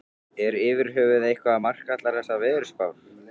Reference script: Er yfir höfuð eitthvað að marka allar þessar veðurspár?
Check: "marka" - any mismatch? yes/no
no